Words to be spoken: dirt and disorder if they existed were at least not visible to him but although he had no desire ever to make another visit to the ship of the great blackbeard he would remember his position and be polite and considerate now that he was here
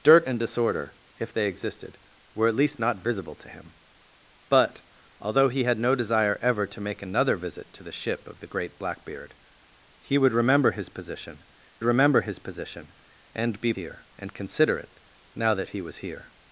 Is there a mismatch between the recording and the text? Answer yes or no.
yes